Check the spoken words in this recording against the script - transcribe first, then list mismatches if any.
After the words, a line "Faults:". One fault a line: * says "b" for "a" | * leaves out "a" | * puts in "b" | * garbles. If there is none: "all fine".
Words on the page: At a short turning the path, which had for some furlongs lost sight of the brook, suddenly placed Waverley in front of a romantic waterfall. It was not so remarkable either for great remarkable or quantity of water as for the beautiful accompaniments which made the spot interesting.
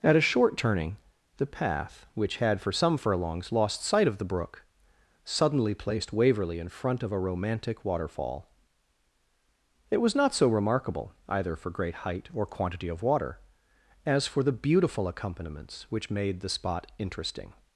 At a short turning the path, which had for some furlongs lost sight of the brook, suddenly placed Waverley in front of a romantic waterfall. It was not so remarkable either for great height or quantity of water as for the beautiful accompaniments which made the spot interesting.
Faults:
* says "height" for "remarkable"